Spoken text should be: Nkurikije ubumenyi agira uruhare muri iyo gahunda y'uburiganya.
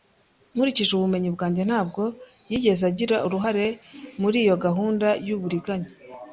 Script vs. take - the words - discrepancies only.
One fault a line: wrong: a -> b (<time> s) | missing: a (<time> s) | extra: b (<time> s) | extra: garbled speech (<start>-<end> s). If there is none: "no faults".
extra: bwanjye ntabwo yigeze (1.4 s)